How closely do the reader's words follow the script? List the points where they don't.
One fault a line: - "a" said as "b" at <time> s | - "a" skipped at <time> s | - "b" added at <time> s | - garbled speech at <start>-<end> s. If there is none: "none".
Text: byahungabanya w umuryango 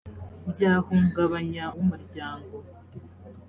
none